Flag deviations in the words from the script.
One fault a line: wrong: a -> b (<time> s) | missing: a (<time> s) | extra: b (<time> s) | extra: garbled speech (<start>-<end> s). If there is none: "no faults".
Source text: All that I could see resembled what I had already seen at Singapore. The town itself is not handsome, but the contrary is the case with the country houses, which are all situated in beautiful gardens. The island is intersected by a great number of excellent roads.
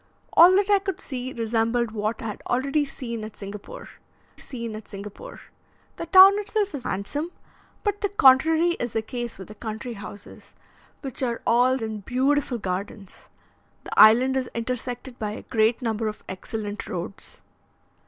extra: seen at Singapore (4.4 s)
missing: not (6.9 s)
missing: situated (11.8 s)